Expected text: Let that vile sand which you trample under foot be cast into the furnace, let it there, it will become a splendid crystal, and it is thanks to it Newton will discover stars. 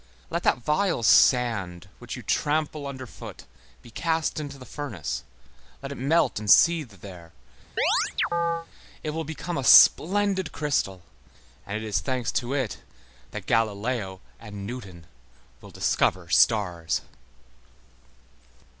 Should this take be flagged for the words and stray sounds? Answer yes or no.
yes